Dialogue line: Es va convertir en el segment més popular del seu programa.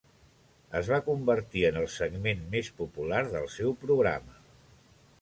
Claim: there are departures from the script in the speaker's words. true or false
false